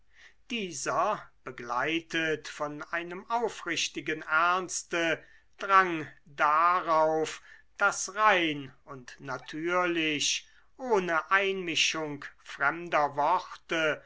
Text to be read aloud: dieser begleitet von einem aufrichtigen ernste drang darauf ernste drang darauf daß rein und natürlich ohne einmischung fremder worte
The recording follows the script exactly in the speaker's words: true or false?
false